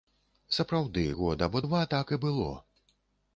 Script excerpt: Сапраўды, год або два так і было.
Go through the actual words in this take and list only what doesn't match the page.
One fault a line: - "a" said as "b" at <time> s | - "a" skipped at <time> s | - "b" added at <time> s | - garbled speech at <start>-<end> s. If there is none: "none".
none